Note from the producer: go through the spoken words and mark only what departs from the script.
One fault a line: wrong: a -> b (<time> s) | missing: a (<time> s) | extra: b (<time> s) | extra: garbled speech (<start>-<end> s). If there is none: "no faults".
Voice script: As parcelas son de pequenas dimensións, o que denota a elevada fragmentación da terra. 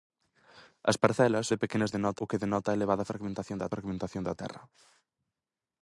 missing: son (1.5 s)
wrong: dimensións -> denota (1.9 s)
extra: fragmentación da (3.7 s)